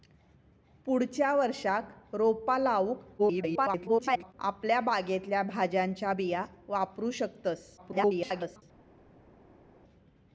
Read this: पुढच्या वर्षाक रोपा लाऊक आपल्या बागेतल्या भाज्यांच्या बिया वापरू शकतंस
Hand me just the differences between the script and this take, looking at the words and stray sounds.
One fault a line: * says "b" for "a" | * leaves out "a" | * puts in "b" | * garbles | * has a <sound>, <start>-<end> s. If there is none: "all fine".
* garbles
* garbles